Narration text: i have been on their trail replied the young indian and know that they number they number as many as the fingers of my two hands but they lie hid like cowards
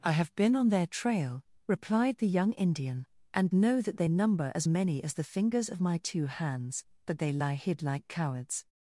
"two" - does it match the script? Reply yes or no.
yes